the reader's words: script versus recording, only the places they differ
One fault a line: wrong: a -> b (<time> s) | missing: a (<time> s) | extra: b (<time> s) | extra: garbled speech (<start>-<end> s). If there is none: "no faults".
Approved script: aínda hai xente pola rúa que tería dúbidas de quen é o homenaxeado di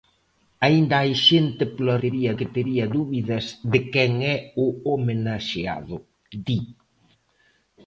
wrong: rúa -> tería (2.0 s)